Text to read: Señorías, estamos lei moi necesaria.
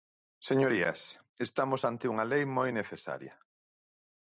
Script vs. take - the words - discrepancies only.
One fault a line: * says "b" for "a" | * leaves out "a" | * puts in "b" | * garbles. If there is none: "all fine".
* puts in "ante unha"